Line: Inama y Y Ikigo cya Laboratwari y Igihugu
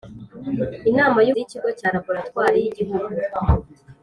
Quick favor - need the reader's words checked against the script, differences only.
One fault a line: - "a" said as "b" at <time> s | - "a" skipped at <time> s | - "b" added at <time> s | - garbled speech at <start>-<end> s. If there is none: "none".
none